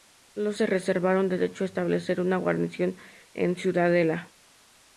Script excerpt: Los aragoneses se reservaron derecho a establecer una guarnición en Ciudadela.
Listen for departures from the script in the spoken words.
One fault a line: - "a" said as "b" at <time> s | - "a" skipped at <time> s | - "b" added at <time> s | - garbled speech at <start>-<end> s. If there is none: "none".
- "aragoneses" skipped at 0.6 s